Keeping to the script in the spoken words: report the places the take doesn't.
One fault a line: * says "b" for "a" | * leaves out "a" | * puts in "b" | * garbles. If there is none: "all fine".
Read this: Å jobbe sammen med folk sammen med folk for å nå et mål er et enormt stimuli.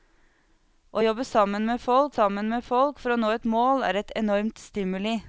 all fine